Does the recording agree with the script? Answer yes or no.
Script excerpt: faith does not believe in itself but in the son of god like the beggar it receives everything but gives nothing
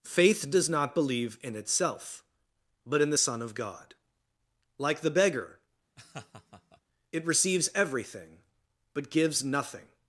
yes